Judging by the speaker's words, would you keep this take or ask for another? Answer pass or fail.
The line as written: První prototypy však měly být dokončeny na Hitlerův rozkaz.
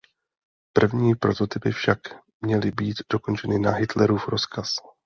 pass